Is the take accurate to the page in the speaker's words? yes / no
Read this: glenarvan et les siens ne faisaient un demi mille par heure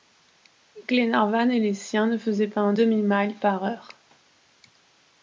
no